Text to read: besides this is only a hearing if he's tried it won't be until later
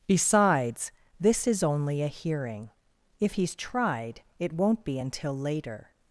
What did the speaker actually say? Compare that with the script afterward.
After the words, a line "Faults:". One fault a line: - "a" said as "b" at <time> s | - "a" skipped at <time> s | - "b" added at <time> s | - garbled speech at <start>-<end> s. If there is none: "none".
besides this is only a hearing if he's tried it won't be until later
Faults:
none